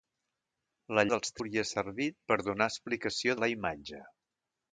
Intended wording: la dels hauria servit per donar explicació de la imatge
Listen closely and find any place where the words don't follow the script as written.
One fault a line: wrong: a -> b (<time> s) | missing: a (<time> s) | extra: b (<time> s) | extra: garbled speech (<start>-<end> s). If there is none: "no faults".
no faults